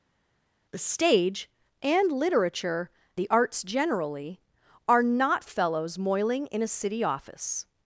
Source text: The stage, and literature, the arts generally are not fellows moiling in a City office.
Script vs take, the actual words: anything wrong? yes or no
no